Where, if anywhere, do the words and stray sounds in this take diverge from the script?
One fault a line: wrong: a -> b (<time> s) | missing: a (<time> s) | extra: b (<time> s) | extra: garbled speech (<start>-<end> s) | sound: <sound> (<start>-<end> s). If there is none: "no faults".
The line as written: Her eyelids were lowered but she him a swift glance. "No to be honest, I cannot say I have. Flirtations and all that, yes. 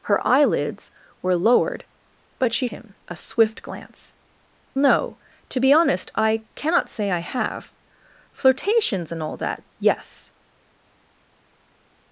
no faults